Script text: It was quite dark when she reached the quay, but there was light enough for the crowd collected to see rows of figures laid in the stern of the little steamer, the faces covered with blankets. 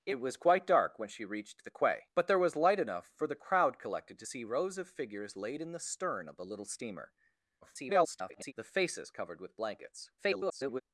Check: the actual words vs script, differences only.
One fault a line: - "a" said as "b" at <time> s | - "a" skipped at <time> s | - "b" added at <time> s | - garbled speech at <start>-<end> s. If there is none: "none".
- garbled speech at 7.6-8.5 s
- garbled speech at 10.2-10.8 s